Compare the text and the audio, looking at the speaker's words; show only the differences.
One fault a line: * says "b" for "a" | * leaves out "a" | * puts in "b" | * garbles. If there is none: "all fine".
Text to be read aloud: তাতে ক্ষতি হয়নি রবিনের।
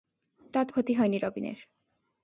all fine